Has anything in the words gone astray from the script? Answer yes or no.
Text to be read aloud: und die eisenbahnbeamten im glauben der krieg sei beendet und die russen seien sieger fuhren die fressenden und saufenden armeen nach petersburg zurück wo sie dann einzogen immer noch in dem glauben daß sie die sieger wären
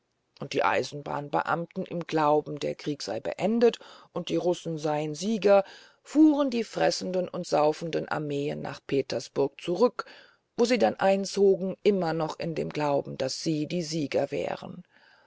no